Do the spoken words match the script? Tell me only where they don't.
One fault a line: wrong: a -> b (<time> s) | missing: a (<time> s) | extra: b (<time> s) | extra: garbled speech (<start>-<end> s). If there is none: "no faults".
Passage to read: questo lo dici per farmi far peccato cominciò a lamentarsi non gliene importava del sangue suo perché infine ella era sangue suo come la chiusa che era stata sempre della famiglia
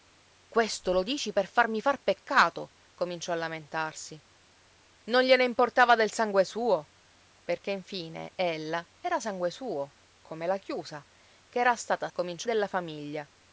wrong: sempre -> cominciò (12.1 s)